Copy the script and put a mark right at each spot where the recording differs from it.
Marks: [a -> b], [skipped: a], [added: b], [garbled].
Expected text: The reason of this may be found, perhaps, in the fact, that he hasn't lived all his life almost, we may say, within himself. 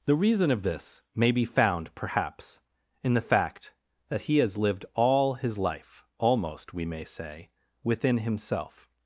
The reason of this may be found, perhaps, in the fact, that he [hasn't -> has] lived all his life almost, we may say, within himself.